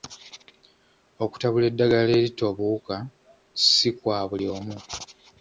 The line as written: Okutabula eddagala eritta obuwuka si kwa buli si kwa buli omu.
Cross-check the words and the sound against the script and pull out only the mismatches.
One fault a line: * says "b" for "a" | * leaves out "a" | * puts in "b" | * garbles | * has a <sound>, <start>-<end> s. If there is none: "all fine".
* leaves out "si kwa buli"